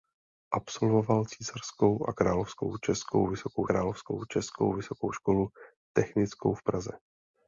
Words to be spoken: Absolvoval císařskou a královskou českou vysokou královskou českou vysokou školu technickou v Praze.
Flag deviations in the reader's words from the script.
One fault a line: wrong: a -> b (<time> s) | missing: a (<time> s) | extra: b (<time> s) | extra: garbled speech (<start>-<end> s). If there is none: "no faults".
no faults